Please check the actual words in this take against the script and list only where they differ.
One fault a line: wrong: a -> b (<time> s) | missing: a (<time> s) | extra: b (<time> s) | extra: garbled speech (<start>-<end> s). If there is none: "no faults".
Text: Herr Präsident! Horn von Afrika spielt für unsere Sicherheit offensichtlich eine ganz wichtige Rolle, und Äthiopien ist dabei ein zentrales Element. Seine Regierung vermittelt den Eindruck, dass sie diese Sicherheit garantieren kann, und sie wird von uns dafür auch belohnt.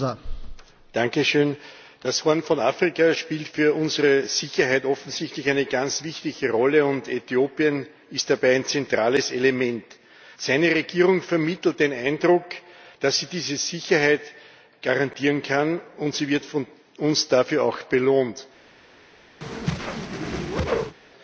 extra: Das (2.0 s)